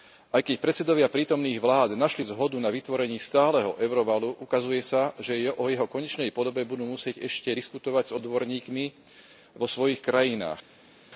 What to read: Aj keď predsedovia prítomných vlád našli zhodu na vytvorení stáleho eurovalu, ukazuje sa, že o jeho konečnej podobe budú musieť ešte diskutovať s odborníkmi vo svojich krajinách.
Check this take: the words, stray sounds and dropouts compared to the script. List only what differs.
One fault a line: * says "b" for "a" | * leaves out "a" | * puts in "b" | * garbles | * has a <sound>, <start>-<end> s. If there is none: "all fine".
all fine